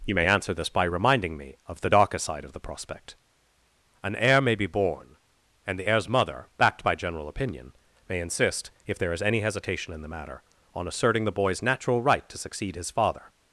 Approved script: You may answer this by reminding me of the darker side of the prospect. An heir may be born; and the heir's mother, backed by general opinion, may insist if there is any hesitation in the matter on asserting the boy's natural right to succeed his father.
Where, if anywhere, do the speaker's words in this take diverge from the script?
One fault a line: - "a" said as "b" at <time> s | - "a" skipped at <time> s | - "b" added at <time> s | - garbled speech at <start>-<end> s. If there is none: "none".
none